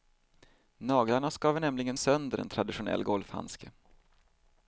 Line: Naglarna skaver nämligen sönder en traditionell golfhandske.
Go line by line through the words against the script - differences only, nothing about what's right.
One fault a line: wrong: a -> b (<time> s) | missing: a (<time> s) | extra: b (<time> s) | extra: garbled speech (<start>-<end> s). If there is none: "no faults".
no faults